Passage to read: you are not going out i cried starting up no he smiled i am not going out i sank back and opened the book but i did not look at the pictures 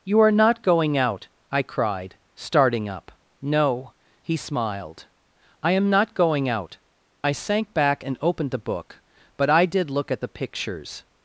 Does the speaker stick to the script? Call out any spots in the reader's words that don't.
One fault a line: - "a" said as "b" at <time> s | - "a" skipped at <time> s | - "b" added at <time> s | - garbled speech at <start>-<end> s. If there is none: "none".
- "not" skipped at 9.9 s